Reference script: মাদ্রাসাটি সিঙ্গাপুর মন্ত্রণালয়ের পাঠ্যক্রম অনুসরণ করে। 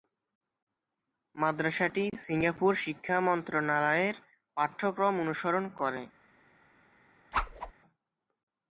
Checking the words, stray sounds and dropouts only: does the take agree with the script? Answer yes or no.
no